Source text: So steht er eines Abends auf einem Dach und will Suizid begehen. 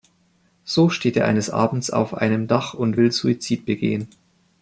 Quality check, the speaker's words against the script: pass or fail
pass